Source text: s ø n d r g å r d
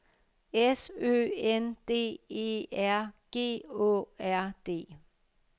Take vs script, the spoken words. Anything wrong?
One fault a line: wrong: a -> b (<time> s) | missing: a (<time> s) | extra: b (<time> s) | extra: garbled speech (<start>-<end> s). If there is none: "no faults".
extra: e (2.3 s)